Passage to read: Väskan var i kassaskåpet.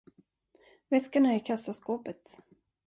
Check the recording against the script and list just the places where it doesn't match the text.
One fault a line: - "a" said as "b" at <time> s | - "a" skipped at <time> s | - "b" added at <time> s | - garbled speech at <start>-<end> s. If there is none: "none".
- "var" said as "är" at 1.2 s